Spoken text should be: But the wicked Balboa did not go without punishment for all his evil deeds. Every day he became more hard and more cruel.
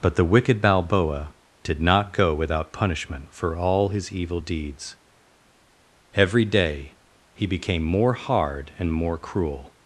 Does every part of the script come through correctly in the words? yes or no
yes